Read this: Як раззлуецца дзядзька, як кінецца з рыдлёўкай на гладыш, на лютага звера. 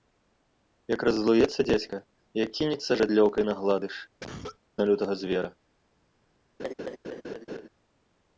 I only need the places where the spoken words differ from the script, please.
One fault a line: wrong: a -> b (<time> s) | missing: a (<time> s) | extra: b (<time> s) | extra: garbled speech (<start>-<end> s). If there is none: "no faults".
no faults